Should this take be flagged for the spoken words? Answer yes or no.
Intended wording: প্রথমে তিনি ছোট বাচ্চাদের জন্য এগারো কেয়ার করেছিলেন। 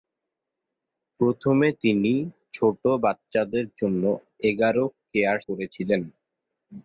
no